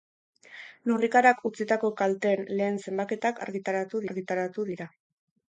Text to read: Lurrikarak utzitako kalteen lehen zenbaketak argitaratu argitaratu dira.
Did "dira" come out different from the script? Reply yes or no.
no